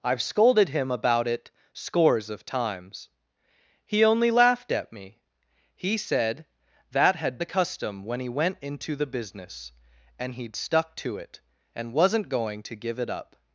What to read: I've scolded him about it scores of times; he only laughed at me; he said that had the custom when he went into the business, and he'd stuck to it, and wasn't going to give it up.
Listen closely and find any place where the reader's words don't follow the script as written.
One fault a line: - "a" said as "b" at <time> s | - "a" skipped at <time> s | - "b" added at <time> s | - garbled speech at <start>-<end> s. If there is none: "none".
none